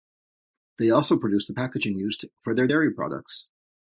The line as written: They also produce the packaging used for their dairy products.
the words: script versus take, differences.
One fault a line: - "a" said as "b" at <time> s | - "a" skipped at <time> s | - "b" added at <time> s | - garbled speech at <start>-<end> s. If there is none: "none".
none